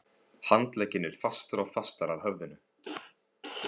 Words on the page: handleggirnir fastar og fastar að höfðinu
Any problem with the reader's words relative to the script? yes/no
no